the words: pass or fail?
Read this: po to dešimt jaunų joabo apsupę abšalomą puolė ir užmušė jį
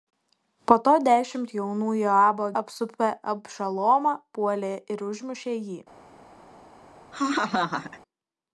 pass